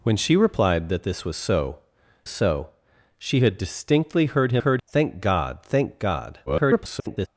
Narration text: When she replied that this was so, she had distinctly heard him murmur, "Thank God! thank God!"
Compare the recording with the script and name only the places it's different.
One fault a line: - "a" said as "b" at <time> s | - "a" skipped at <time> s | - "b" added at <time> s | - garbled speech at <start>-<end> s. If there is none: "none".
- "so" added at 2.3 s
- "murmur" said as "heard" at 4.6 s
- garbled speech at 6.5-7.3 s